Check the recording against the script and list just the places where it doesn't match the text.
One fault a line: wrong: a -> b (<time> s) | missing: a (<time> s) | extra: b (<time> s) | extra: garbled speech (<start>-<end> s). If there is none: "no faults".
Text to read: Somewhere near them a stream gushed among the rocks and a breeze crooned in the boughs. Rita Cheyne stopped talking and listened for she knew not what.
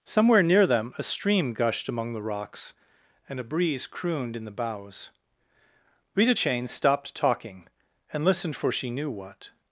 missing: not (9.1 s)